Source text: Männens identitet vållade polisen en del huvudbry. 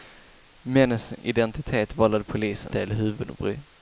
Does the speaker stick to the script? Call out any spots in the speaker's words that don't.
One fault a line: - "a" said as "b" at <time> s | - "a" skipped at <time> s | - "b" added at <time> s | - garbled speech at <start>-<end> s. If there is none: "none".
- "en" skipped at 2.8 s